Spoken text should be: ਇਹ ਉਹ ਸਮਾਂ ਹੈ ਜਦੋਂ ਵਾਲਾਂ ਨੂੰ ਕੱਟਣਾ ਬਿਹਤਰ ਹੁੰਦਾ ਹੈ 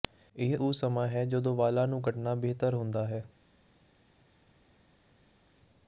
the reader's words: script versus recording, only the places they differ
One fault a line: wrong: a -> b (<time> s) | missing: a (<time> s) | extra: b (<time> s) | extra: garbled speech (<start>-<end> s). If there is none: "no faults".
no faults